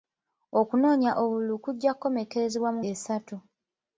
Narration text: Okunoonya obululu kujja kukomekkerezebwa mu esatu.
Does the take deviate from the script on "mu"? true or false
false